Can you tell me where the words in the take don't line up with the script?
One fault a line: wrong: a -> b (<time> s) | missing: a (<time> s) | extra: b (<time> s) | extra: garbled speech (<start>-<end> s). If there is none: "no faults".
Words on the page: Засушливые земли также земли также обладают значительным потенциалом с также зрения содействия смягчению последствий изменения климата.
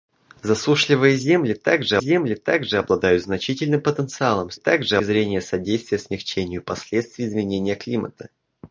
no faults